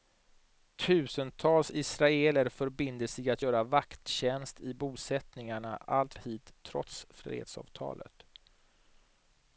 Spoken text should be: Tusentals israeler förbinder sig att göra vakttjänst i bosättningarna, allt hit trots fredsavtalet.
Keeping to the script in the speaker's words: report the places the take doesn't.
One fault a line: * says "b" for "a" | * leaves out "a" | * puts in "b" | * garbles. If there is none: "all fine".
all fine